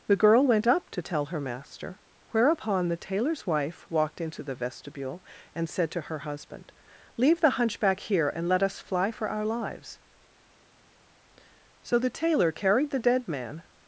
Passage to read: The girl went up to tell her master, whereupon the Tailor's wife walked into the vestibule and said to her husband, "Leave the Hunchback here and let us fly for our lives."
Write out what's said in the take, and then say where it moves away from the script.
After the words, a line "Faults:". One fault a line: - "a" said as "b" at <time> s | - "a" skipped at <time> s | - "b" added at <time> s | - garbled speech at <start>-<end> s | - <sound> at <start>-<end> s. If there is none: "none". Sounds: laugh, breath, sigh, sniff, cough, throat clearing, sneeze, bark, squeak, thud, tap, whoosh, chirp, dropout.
The girl went up to tell her master, whereupon the Tailor's wife walked into the vestibule and said to her husband, "Leave the Hunchback here and let us fly for our lives." So the Tailor carried the dead man
Faults:
- "So the Tailor carried the dead man" added at 11.8 s